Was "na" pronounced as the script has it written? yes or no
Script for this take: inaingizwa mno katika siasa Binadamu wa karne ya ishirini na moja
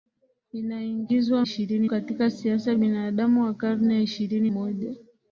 no